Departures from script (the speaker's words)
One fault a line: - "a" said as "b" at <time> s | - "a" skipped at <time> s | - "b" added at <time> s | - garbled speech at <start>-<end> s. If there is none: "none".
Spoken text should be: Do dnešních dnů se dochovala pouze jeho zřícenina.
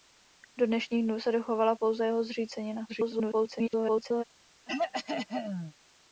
- garbled speech at 2.9-4.2 s